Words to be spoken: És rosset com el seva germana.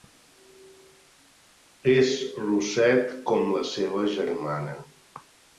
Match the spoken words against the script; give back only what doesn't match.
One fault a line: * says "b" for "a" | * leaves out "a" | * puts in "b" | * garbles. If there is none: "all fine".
* says "la" for "el"